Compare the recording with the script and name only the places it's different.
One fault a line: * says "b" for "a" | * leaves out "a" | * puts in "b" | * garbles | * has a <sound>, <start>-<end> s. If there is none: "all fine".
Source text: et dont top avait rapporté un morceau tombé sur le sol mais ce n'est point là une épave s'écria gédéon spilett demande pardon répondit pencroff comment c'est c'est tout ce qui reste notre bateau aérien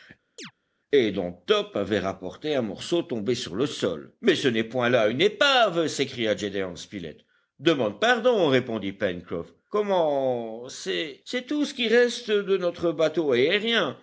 * has a chirp, 0.4-0.5 s
* puts in "de"